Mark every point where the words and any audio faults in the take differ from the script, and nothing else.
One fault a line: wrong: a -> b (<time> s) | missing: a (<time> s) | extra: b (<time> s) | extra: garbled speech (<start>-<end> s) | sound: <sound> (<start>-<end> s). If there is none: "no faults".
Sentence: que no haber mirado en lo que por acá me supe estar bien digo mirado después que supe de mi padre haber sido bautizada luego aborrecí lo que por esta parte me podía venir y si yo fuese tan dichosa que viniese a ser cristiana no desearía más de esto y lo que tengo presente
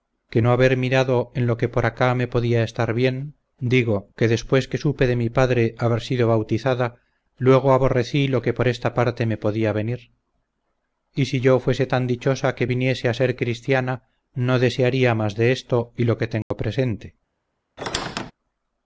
wrong: supe -> podía (2.3 s)
wrong: mirado -> que (4.2 s)
sound: dropout (16.4-16.5 s)
sound: squeak (17.8-18.3 s)